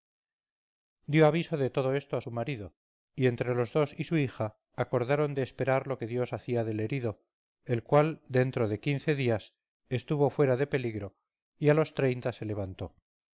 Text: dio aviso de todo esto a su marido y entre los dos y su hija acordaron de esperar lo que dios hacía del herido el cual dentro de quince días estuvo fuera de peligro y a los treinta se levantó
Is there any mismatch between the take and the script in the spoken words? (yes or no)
no